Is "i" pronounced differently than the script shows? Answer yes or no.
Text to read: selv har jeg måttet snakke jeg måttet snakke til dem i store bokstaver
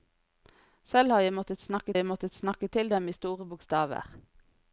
no